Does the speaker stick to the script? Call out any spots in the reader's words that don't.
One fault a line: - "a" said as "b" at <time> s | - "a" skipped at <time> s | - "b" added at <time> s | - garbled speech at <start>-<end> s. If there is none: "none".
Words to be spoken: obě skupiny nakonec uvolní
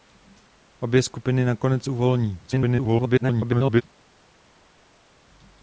- garbled speech at 2.5-3.8 s